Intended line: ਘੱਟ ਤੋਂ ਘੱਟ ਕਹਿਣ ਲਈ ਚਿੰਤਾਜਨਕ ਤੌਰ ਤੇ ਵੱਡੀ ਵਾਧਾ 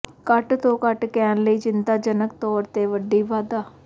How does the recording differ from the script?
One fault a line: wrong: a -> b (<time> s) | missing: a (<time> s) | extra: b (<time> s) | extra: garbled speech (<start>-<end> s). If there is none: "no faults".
no faults